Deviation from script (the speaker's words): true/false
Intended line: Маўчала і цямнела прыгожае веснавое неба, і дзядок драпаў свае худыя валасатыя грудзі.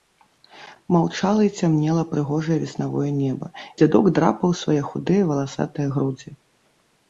true